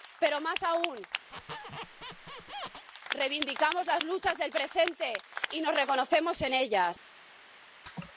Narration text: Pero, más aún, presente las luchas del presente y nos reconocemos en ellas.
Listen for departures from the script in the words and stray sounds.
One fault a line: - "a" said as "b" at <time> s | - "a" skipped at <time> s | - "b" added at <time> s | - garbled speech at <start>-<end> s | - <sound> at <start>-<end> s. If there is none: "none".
- squeak at 1.3-2.9 s
- "presente" said as "reivindicamos" at 3.1 s
- laugh at 7.9-8.1 s